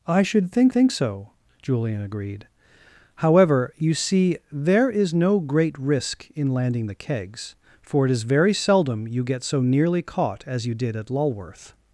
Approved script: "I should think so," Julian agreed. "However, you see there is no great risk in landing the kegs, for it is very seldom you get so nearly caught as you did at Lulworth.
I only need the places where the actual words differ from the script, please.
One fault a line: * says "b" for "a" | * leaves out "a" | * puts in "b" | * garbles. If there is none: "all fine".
* puts in "think"